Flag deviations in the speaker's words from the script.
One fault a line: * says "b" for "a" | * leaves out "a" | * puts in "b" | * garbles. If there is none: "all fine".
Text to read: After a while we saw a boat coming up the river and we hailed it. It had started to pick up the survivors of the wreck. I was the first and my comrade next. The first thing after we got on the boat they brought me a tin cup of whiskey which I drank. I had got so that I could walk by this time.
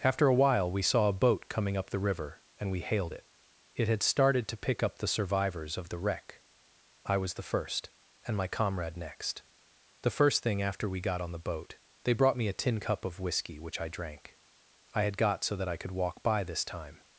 all fine